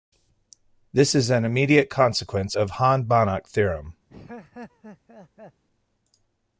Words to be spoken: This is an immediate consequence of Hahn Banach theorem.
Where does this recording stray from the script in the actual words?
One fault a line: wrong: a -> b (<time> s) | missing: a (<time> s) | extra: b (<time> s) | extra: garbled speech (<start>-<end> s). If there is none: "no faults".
no faults